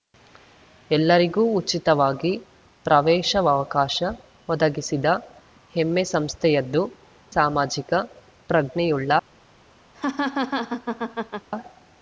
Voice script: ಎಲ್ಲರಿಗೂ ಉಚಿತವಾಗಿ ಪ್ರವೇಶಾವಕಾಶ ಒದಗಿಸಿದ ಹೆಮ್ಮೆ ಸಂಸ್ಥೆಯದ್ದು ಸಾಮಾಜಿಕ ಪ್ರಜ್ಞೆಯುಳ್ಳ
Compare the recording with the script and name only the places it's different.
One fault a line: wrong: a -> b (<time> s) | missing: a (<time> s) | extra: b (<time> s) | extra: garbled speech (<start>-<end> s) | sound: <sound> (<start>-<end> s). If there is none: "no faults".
sound: laugh (9.9-11.5 s)